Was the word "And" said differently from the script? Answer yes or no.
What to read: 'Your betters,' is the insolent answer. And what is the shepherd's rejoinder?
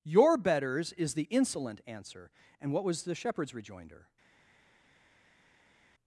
no